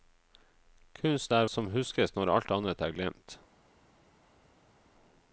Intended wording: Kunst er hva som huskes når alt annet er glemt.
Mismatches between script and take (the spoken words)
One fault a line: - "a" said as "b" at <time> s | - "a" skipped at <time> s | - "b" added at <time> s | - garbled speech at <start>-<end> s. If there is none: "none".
- "hva" skipped at 1.5 s